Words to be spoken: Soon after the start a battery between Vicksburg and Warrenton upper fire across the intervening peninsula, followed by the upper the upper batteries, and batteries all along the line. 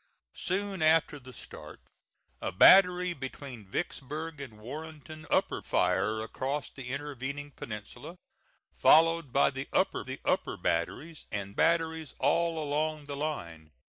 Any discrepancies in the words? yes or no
no